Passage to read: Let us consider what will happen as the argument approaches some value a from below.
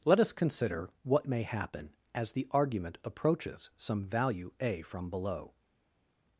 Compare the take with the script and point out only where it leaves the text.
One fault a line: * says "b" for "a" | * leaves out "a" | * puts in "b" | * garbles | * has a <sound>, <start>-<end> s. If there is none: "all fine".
* says "may" for "will"